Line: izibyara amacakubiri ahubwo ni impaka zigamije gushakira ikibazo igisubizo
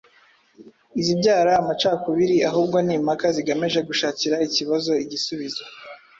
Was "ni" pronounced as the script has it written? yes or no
yes